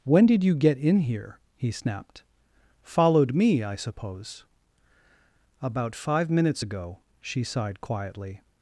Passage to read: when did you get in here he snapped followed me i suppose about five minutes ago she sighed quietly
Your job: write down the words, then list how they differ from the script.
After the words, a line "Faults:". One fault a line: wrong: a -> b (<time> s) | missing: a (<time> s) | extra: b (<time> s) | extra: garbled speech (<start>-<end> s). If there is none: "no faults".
when did you get in here he snapped followed me i suppose about five minutes ago she sighed quietly
Faults:
no faults